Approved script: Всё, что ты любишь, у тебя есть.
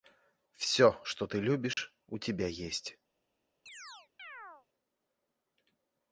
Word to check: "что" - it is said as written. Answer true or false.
true